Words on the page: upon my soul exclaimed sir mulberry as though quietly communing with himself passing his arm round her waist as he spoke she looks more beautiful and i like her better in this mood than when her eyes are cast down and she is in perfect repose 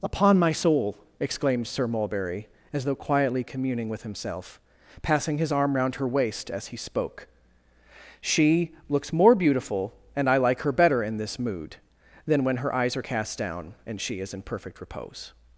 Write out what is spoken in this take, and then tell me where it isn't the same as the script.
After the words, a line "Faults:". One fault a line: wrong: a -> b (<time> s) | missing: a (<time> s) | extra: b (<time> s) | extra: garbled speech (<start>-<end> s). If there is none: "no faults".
upon my soul exclaimed sir mulberry as though quietly communing with himself passing his arm round her waist as he spoke she looks more beautiful and i like her better in this mood than when her eyes are cast down and she is in perfect repose
Faults:
no faults